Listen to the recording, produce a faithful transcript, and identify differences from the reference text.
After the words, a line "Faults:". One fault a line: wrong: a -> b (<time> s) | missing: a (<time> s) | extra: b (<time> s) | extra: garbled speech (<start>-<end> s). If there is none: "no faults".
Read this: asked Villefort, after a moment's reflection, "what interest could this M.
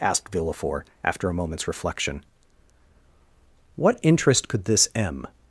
asked Villefort, after a moment's reflection, "what interest could this M.
Faults:
no faults